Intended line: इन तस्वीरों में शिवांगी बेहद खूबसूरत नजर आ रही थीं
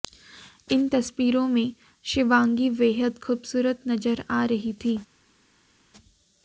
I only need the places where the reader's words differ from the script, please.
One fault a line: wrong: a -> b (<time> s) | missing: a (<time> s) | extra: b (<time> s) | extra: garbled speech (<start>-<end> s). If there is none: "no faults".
no faults